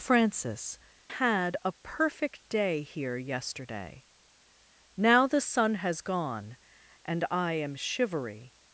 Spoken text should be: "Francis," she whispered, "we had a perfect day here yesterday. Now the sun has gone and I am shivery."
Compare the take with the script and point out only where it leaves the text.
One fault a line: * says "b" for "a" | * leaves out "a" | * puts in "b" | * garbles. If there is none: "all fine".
* leaves out "she whispered we"